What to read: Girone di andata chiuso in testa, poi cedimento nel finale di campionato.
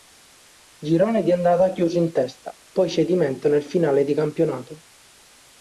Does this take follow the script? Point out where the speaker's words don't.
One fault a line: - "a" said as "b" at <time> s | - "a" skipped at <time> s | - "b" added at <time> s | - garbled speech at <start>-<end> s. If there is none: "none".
none